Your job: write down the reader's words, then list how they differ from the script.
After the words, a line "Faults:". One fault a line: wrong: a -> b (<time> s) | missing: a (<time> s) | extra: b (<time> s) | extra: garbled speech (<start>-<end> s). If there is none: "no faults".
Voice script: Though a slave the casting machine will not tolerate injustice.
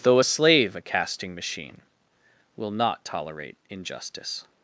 Though a slave a casting machine will not tolerate injustice.
Faults:
wrong: the -> a (0.8 s)